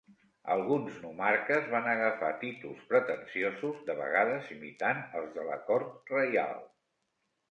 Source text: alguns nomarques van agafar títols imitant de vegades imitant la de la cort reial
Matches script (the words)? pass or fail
fail